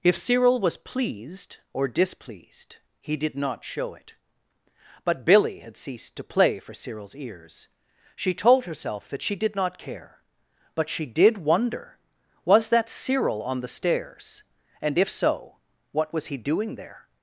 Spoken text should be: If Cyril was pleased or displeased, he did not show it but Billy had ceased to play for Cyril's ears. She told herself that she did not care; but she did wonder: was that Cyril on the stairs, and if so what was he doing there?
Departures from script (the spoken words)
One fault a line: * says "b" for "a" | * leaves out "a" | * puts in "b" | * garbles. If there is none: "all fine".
all fine